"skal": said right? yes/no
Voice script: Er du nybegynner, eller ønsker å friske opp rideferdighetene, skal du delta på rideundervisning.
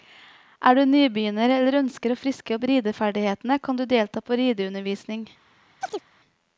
no